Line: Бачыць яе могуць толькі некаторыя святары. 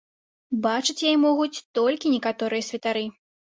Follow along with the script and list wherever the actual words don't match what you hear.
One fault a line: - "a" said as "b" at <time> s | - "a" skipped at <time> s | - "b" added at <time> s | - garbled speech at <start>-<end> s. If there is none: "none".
none